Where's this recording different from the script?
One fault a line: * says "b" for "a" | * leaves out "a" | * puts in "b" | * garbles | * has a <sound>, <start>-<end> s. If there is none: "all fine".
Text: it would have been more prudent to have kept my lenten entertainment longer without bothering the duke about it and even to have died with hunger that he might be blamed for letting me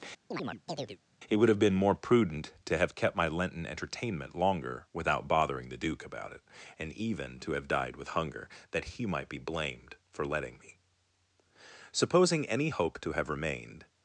* has a chirp, 0.3-1.0 s
* puts in "supposing any hope to have remained"